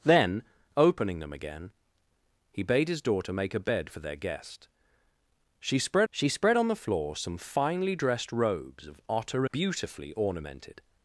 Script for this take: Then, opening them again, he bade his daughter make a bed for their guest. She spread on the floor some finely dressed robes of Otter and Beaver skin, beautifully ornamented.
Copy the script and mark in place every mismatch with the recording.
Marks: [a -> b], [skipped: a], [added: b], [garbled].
Then, opening them again, he bade his daughter make a bed for their guest. She spread [added: she spread] on the floor some finely dressed robes of Otter [skipped: and Beaver skin,] beautifully ornamented.